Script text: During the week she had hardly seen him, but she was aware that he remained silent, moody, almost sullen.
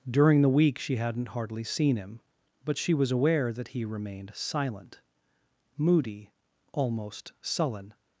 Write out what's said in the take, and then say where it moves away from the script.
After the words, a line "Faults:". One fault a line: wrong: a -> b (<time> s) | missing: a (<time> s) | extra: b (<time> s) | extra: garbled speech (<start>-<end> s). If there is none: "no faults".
During the week she hadn't hardly seen him, but she was aware that he remained silent, moody, almost sullen.
Faults:
wrong: had -> hadn't (0.9 s)